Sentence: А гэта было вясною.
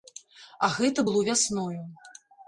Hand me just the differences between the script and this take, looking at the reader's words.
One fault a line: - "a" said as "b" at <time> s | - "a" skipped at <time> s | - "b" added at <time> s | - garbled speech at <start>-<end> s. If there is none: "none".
none